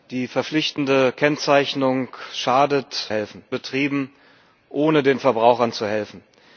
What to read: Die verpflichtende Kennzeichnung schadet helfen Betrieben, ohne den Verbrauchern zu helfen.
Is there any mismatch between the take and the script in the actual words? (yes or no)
no